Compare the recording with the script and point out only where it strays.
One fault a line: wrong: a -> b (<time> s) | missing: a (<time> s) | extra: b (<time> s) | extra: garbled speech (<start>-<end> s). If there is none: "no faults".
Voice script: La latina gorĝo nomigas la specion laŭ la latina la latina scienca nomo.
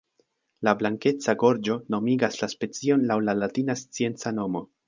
wrong: latina -> blankeca (0.8 s)
missing: la latina (3.8 s)